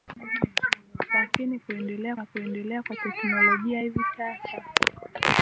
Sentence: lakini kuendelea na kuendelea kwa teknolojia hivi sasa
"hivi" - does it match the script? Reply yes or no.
yes